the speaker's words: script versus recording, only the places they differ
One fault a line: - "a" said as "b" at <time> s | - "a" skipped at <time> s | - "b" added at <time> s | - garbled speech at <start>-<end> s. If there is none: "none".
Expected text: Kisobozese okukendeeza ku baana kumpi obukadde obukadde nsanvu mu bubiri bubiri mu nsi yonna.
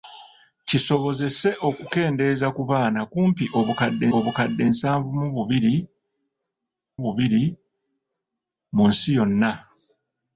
none